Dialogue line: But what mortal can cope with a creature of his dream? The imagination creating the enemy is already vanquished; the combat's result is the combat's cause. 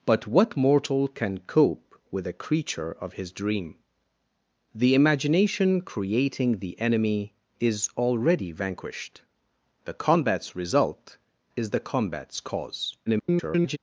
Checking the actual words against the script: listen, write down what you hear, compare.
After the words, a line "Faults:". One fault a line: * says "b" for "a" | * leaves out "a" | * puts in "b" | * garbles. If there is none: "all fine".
But what mortal can cope with a creature of his dream? The imagination creating the enemy is already vanquished; the combat's result is the combat's cause. [garbled]
Faults:
* garbles